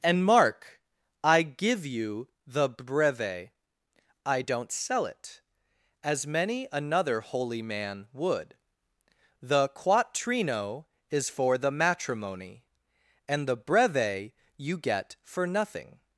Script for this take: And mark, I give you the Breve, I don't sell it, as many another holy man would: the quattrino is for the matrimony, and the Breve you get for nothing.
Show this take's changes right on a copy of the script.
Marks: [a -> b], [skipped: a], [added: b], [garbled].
And mark, I give you the Breve, I don't sell it, as many another holy man would: the quattrino is for the matrimony, and the Breve you get for nothing.